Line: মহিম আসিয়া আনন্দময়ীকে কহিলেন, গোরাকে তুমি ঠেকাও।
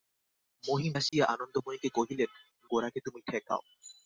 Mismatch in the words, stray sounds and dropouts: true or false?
true